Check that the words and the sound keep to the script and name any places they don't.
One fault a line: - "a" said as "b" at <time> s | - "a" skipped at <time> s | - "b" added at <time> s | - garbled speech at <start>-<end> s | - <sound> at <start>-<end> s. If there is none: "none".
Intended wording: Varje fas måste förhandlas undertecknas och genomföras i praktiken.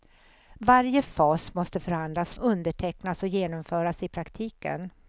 none